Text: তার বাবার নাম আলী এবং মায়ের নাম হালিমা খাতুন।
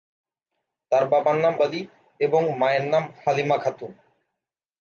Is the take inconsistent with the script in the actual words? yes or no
no